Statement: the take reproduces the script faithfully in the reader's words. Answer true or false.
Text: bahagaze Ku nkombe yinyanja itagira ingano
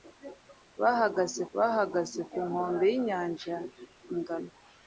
false